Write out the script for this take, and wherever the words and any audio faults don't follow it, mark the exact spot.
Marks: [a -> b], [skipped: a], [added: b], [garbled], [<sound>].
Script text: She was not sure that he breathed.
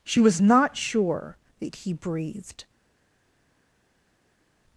She was not sure that he breathed.